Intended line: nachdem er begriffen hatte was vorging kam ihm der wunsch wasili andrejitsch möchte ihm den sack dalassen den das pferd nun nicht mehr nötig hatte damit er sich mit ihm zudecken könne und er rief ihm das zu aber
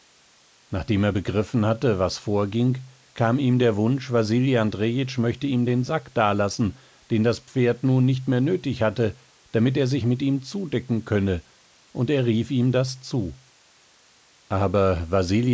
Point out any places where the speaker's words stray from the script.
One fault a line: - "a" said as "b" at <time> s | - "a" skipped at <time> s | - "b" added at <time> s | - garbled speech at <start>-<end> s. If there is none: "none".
none